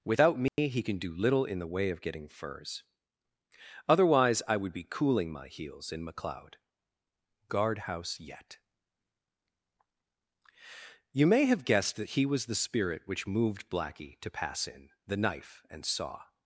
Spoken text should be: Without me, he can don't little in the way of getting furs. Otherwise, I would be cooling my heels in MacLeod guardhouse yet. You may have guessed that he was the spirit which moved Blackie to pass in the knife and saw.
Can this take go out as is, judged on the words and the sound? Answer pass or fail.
fail